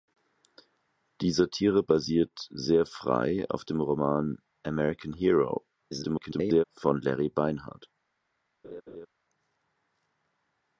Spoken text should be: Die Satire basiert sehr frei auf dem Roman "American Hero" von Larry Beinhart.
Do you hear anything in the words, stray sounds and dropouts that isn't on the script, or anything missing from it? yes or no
yes